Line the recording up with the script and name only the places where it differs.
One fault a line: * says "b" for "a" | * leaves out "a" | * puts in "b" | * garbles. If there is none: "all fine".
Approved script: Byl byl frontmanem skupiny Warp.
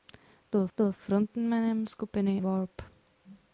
all fine